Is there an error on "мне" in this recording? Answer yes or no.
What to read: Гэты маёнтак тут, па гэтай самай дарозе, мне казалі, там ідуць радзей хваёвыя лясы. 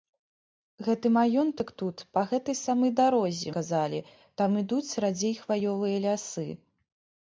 yes